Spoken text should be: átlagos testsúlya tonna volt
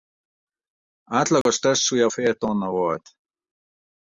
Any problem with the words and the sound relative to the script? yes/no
yes